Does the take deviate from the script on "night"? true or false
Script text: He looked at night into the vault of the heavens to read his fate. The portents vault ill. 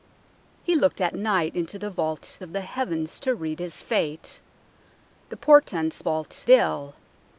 false